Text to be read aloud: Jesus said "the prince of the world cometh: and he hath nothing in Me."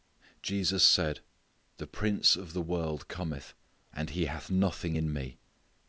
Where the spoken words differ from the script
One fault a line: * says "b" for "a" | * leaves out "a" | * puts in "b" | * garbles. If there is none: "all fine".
all fine